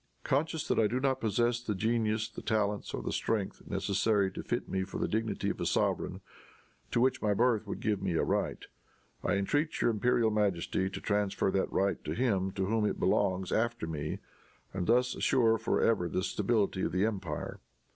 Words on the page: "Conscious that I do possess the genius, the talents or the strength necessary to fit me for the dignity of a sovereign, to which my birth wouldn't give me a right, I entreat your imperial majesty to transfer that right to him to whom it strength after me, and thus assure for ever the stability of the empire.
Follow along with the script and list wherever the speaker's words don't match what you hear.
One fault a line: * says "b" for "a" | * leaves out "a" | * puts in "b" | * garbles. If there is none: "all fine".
* puts in "not"
* says "would" for "wouldn't"
* says "belongs" for "strength"